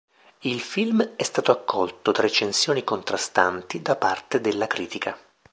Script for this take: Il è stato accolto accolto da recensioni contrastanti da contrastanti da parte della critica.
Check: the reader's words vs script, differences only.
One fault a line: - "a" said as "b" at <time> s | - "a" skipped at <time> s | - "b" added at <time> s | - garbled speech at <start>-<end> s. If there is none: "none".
- "film" added at 0.6 s
- "accolto" skipped at 2.1 s
- "contrastanti da" skipped at 4.0 s